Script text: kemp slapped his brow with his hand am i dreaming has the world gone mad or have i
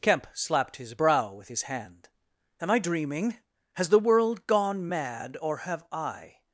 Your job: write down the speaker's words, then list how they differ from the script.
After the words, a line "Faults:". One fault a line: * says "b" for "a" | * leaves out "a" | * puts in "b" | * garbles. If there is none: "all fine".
kemp slapped his brow with his hand am i dreaming has the world gone mad or have i
Faults:
all fine